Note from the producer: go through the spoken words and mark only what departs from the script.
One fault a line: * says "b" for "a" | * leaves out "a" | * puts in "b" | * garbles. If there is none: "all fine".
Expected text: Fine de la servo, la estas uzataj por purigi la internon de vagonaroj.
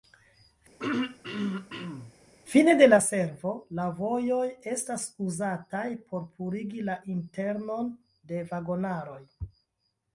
* puts in "vojoj"